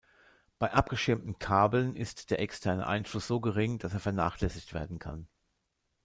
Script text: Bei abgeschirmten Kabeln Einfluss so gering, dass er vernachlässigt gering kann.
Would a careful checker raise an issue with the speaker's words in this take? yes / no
yes